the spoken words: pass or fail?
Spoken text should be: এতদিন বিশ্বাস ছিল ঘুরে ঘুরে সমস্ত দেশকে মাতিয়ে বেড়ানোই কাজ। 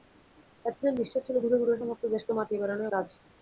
pass